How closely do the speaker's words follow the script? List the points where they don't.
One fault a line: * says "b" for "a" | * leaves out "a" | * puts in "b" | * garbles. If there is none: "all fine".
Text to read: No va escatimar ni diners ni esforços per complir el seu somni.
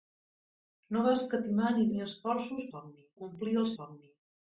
* leaves out "diners"
* says "somni" for "per"
* leaves out "seu"